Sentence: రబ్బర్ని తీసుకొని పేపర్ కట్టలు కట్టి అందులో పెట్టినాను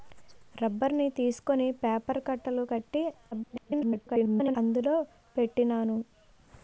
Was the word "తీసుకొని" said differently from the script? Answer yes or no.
no